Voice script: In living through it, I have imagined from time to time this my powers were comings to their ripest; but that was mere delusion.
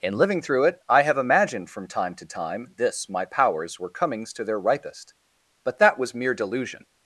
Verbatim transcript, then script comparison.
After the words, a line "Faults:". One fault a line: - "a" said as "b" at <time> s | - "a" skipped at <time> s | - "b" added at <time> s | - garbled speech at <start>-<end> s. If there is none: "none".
In living through it, I have imagined from time to time this my powers were comings to their ripest; but that was mere delusion.
Faults:
none